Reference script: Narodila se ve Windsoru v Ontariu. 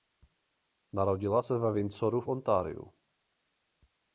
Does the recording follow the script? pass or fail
pass